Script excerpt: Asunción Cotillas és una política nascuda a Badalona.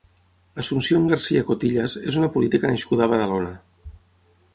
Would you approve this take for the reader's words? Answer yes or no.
no